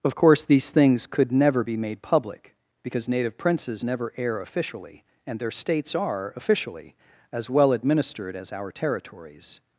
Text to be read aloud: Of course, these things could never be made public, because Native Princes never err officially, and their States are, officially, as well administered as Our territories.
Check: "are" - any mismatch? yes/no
no